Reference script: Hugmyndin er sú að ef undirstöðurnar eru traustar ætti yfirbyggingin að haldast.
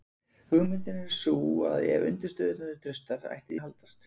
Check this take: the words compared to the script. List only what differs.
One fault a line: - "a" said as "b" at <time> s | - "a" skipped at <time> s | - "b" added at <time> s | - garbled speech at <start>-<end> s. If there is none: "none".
- "yfirbyggingin" skipped at 3.6 s